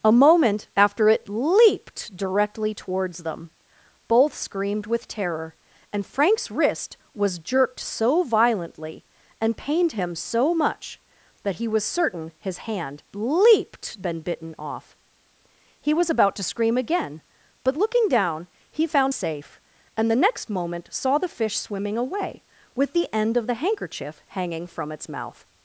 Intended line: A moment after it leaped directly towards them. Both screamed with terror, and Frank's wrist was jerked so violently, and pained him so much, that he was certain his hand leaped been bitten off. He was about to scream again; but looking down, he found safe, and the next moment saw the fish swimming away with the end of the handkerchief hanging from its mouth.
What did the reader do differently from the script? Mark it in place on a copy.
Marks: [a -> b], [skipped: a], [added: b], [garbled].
A moment after it leaped directly towards them. Both screamed with terror, and Frank's wrist was jerked so violently, and pained him so much, that he was certain his hand leaped been bitten off. He was about to scream again; but looking down, he found safe, and the next moment saw the fish swimming away with the end of the handkerchief hanging from its mouth.